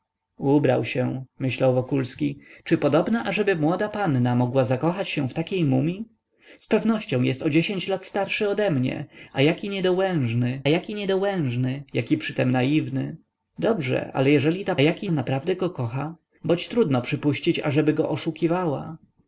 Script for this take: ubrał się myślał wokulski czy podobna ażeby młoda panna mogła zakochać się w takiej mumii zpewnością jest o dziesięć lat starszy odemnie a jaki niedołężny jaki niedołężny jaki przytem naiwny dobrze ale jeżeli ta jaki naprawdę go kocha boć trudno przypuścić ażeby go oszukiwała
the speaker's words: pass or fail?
pass